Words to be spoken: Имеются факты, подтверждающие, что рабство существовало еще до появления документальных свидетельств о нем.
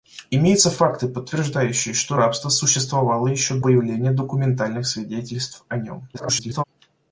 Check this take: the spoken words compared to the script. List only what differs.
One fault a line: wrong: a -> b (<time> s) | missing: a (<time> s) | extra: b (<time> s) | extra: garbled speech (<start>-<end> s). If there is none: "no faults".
missing: до (3.6 s)
extra: garbled speech (6.1-6.6 s)